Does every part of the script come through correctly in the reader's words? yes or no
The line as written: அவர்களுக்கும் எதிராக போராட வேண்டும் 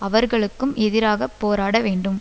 yes